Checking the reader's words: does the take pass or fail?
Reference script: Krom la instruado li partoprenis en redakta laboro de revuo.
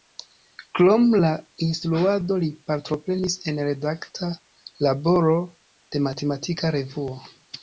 fail